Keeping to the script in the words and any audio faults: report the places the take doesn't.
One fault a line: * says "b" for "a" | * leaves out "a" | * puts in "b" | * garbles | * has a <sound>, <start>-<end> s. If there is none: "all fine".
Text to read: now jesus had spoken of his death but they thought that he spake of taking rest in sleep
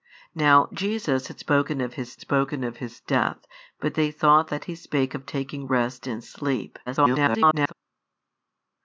* puts in "spoken of his"
* garbles